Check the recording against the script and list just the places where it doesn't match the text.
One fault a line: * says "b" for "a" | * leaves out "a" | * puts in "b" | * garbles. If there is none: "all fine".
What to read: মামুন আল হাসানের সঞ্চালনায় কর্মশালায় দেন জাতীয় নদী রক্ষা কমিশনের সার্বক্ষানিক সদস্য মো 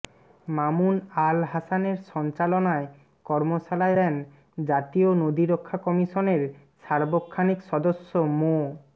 all fine